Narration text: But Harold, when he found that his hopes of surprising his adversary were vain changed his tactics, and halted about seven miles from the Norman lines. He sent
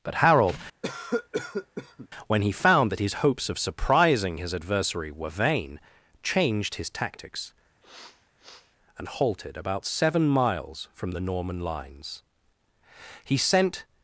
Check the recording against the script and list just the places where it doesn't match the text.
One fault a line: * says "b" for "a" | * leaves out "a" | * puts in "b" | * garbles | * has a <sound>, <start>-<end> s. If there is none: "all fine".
* has a cough, 0.8-2.1 s
* has a sniff, 7.8-8.8 s